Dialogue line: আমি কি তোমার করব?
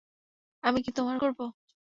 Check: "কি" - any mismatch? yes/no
no